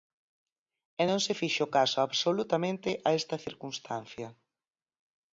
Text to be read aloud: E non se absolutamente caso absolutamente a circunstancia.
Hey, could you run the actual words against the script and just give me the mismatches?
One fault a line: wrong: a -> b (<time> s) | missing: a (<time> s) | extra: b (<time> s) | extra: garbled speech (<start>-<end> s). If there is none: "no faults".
wrong: absolutamente -> fixo (1.4 s)
extra: esta (3.2 s)